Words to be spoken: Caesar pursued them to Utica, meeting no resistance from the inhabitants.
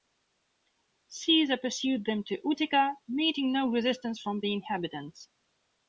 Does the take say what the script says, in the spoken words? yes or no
yes